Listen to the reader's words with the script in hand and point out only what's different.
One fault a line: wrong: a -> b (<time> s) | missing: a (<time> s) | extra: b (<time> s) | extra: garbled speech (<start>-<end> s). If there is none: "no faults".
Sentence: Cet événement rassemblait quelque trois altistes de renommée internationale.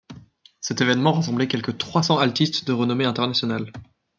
extra: cents (2.0 s)